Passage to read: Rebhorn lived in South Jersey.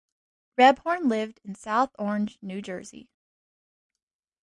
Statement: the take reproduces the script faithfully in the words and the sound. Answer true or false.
false